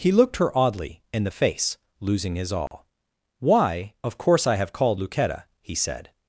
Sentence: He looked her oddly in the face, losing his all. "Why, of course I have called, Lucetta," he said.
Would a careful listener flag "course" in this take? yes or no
no